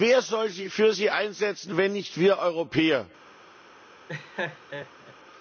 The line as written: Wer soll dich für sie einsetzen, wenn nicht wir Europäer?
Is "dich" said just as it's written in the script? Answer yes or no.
no